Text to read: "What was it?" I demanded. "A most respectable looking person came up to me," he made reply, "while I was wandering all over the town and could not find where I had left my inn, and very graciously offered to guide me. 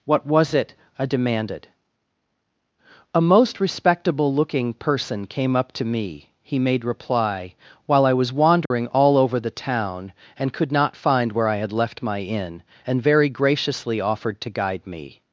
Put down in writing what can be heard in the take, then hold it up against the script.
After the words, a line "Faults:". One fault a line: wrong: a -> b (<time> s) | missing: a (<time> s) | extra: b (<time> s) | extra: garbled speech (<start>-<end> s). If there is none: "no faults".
"What was it?" I demanded. "A most respectable looking person came up to me," he made reply, "while I was wandering all over the town and could not find where I had left my inn, and very graciously offered to guide me.
Faults:
no faults